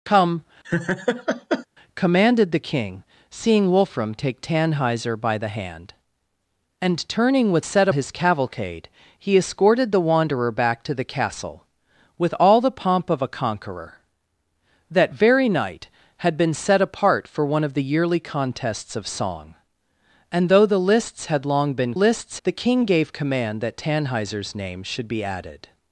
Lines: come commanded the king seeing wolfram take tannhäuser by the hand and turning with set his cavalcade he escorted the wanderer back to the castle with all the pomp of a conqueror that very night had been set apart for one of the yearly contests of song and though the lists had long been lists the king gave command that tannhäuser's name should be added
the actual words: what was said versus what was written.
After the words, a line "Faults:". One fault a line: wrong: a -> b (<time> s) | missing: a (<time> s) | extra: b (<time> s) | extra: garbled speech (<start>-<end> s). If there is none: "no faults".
come commanded the king seeing wolfram take tannhäuser by the hand and turning with set his cavalcade he escorted the wanderer back to the castle with all the pomp of a conqueror that very night had been set apart for one of the yearly contests of song and though the lists had long been lists the king gave command that tannhäuser's name should be added
Faults:
no faults